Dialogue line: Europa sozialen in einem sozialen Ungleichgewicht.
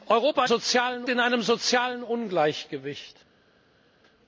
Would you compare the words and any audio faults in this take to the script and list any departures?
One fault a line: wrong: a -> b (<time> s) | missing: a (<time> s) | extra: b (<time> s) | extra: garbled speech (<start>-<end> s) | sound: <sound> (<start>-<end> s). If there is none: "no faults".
no faults